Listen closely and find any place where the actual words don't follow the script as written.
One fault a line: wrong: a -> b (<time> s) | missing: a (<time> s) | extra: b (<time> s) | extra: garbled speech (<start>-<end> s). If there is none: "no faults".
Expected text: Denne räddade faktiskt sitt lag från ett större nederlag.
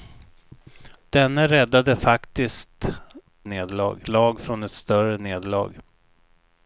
wrong: sitt -> nederlag (3.4 s)